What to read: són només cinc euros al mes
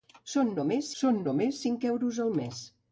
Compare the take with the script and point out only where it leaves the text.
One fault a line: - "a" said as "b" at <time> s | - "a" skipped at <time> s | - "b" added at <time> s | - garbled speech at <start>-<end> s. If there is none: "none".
- "són només" added at 1.0 s